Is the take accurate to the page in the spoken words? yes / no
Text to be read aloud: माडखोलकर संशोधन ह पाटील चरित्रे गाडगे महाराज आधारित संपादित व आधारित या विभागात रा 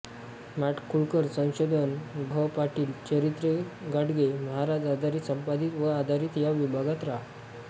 yes